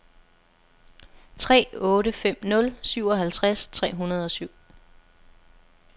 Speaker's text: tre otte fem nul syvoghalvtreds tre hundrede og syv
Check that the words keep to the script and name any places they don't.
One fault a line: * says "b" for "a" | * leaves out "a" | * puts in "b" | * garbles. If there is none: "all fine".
all fine